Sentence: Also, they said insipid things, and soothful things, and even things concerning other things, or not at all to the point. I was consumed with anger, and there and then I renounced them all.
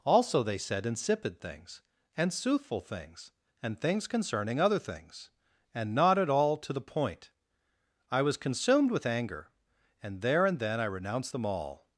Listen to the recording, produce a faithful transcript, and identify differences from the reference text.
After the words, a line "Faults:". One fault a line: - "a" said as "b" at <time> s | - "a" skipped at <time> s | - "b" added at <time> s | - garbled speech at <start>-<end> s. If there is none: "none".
Also, they said insipid things, and soothful things, and things concerning other things, and not at all to the point. I was consumed with anger, and there and then I renounced them all.
Faults:
- "even" skipped at 3.8 s
- "or" said as "and" at 5.7 s